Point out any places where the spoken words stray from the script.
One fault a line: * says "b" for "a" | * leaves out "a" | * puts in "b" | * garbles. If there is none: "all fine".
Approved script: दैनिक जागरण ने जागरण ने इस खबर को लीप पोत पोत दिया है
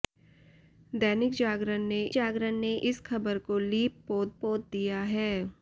all fine